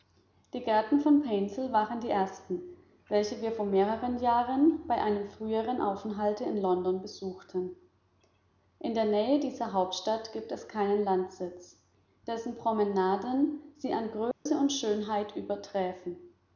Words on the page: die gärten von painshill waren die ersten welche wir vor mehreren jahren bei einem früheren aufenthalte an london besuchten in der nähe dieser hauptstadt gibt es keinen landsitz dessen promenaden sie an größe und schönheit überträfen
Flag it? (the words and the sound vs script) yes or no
yes